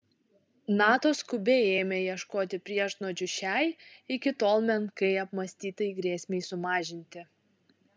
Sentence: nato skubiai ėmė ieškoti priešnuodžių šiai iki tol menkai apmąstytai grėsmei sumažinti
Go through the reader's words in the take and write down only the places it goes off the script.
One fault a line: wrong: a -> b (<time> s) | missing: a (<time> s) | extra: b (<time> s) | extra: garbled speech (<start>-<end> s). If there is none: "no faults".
no faults